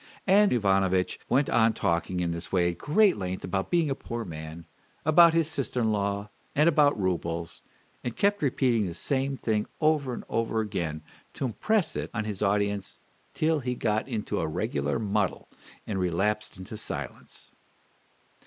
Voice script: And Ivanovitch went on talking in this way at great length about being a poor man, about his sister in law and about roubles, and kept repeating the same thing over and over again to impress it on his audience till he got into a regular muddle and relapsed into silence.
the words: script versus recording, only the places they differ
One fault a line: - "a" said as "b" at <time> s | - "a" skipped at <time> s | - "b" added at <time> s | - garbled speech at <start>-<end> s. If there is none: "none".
none